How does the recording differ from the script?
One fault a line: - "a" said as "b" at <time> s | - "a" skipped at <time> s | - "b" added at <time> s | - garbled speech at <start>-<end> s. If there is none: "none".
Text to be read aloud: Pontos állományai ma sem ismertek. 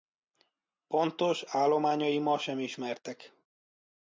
none